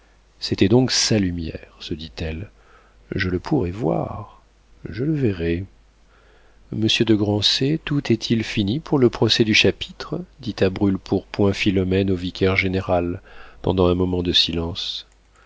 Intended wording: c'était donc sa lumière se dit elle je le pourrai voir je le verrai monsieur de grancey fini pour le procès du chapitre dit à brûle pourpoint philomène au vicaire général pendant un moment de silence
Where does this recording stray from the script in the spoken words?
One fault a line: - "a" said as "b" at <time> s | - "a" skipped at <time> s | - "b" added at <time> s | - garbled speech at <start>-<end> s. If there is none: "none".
- "tout est il" added at 7.8 s